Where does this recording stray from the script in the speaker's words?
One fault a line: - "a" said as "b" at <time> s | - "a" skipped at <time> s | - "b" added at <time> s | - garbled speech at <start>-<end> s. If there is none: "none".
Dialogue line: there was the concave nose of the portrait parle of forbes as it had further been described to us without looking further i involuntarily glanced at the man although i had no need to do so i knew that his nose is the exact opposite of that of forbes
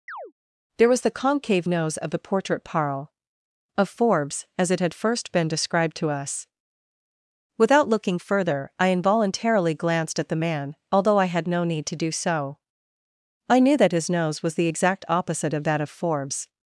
- "further" said as "first" at 4.9 s
- "is" said as "was" at 14.4 s